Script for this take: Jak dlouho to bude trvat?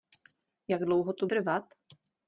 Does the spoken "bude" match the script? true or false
false